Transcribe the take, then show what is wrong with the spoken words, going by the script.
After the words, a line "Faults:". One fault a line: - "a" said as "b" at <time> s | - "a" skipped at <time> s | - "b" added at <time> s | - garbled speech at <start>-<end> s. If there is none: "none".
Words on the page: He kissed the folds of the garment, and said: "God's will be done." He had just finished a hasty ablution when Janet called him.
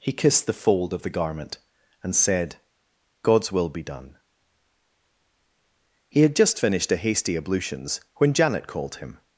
He kissed the fold of the garment, and said: "God's will be done." He had just finished a hasty ablutions when Janet called him.
Faults:
- "folds" said as "fold" at 0.5 s
- "ablution" said as "ablutions" at 7.3 s